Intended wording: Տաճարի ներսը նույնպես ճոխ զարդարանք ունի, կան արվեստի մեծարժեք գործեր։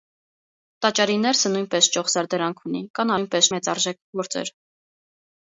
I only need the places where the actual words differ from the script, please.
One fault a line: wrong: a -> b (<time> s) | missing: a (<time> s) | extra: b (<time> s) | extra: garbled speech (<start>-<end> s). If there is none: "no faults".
wrong: արվեստի -> նույնպես (3.2 s)